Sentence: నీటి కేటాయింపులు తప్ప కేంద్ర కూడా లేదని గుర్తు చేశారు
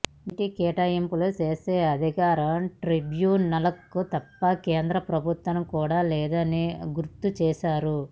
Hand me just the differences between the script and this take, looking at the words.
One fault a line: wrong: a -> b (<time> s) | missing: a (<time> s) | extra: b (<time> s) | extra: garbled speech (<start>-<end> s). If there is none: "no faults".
extra: చేసే అధికారం ట్రిబ్యునల్కు (1.4 s)
extra: ప్రభుత్వానికి (5.1 s)